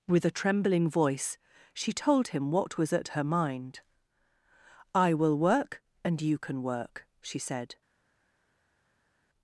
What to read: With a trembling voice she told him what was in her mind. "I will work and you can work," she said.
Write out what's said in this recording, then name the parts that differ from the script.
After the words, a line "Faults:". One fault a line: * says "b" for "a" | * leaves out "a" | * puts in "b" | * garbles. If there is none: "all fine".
With a trembling voice she told him what was at her mind. "I will work and you can work," she said.
Faults:
* says "at" for "in"